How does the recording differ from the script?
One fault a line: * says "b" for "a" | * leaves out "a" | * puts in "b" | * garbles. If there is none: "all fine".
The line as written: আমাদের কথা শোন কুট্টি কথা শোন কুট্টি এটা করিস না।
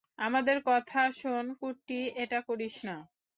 * leaves out "কথা শোন কুট্টি"